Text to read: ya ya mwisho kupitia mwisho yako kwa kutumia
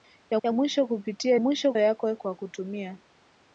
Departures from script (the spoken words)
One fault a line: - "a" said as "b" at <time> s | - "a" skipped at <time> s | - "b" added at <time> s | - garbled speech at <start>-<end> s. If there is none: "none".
none